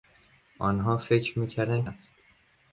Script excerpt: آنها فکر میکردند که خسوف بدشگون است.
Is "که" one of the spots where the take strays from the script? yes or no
yes